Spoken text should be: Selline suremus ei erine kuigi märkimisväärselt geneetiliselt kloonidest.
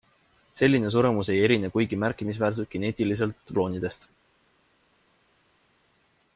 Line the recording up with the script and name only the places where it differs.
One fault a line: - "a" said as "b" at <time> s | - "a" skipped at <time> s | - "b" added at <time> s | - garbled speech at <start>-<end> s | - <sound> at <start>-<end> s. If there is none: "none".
none